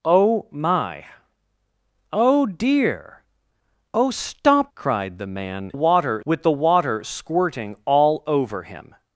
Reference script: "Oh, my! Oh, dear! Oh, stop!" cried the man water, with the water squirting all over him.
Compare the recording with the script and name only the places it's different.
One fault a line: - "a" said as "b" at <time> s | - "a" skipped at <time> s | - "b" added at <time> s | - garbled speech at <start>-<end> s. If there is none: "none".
none